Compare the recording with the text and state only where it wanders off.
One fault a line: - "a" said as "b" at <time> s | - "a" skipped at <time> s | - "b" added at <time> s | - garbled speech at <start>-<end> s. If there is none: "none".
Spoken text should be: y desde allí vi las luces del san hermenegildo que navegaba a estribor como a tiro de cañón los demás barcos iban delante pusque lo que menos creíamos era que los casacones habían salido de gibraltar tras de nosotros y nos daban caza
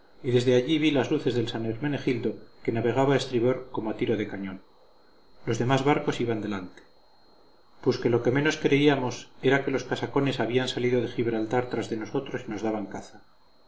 none